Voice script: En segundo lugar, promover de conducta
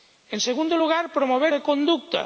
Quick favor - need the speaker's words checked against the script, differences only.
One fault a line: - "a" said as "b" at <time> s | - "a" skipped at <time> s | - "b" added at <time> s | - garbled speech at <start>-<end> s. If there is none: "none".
none